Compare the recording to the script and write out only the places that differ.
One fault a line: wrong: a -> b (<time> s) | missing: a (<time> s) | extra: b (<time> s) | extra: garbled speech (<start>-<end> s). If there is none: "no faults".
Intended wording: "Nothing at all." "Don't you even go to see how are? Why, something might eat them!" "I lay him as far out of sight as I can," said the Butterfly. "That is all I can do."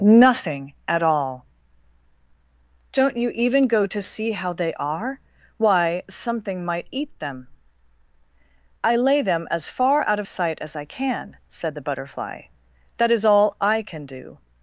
extra: they (4.5 s)
wrong: him -> them (9.2 s)